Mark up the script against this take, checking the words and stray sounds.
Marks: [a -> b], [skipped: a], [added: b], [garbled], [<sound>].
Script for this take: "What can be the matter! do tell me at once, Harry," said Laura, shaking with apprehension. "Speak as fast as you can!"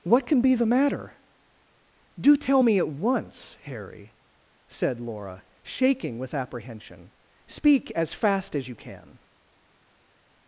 "What can be the matter! do tell me at once, Harry," said Laura, shaking with apprehension. "Speak as fast as you can!"